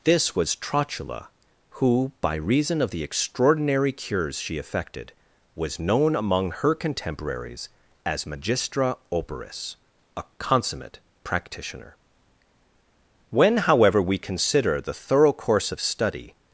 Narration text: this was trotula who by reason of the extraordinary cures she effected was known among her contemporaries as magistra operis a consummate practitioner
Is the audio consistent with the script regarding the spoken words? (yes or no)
no